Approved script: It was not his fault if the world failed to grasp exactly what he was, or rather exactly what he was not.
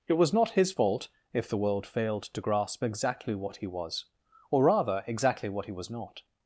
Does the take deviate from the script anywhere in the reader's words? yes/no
no